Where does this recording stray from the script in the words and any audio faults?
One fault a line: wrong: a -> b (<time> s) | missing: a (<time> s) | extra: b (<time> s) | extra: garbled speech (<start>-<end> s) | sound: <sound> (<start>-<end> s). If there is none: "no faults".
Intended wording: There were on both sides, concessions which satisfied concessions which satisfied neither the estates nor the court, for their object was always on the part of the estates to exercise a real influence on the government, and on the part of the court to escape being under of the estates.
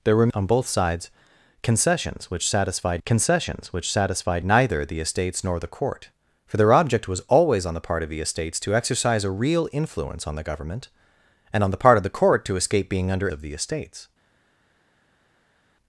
no faults